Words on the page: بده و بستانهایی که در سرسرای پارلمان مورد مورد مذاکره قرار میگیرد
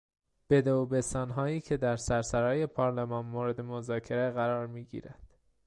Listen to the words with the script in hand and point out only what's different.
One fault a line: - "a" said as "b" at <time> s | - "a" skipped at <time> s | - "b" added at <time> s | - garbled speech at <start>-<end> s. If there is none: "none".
- "مورد" skipped at 3.6 s